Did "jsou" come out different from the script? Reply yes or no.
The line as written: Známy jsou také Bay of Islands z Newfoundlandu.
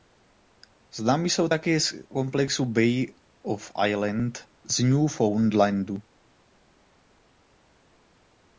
no